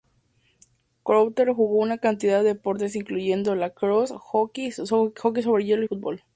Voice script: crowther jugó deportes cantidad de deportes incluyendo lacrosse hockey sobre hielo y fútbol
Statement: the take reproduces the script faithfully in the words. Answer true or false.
false